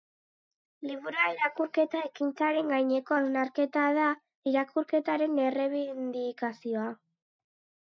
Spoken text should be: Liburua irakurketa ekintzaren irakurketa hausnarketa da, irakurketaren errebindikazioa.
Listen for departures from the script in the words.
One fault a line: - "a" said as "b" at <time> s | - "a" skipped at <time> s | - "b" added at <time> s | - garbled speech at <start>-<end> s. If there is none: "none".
- "irakurketa" said as "gaineko" at 2.8 s